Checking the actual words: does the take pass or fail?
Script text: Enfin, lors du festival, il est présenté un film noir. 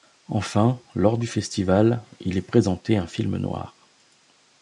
pass